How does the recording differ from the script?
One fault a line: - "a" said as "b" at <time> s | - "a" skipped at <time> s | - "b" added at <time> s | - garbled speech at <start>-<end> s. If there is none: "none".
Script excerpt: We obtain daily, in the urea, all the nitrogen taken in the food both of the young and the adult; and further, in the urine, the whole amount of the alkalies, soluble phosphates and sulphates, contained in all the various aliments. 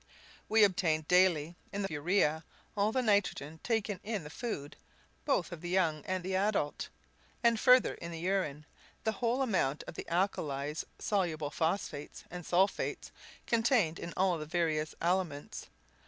none